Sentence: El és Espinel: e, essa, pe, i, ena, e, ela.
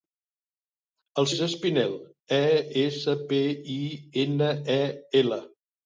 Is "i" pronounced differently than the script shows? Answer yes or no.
no